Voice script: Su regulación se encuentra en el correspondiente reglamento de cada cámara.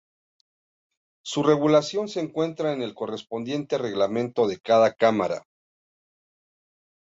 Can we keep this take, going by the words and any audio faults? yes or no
yes